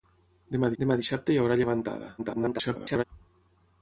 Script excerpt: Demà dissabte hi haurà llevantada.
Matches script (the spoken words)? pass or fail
fail